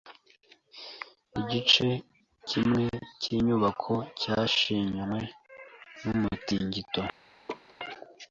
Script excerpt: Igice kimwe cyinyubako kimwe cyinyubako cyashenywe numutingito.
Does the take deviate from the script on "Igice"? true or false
false